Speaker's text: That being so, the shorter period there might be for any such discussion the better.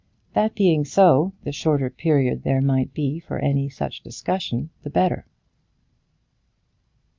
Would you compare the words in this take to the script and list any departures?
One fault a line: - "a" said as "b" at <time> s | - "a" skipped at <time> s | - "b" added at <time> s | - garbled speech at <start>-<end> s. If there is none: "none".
none